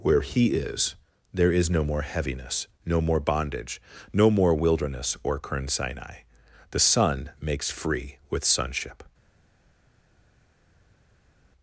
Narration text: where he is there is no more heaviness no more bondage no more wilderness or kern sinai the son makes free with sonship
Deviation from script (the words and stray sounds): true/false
false